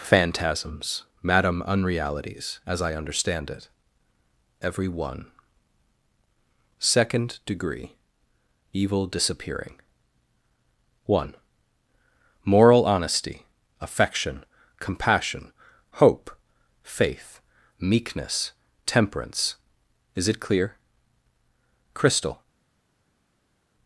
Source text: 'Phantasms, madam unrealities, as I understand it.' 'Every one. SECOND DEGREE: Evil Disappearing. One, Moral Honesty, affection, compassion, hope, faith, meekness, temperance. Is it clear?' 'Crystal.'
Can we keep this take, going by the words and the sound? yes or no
yes